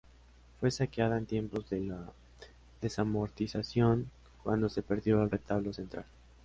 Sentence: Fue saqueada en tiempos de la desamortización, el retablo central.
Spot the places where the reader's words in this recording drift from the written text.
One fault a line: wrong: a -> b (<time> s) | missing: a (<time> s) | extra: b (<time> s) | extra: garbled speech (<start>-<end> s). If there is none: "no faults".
extra: cuando se perdió (4.4 s)